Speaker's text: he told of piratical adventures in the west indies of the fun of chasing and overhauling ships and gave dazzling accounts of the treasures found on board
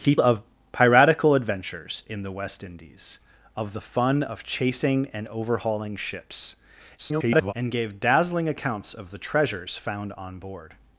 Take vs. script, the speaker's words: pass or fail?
fail